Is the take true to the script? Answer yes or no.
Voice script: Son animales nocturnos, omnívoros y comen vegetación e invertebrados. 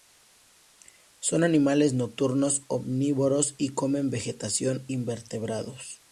no